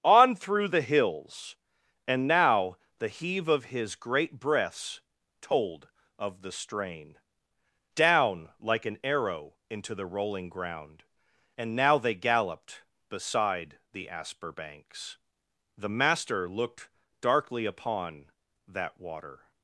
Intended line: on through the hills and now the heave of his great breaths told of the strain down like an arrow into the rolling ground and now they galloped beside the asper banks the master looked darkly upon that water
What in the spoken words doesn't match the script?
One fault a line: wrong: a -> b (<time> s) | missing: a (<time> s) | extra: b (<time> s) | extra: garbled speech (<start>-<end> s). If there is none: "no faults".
no faults